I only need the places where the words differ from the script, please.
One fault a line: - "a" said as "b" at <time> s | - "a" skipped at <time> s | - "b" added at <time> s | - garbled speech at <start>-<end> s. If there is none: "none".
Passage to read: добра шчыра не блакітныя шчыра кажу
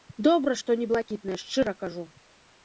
- "шчыра" said as "што" at 0.6 s